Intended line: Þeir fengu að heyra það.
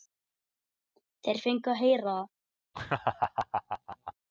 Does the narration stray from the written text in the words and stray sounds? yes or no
yes